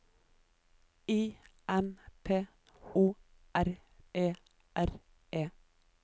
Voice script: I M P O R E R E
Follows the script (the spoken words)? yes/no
yes